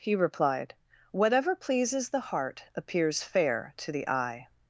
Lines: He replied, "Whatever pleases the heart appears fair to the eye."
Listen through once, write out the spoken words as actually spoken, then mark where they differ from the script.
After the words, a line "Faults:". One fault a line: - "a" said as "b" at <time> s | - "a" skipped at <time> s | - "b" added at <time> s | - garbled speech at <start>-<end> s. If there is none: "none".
He replied, "Whatever pleases the heart appears fair to the eye."
Faults:
none